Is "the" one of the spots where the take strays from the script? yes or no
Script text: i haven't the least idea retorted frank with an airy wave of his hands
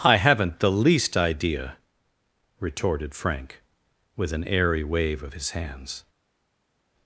no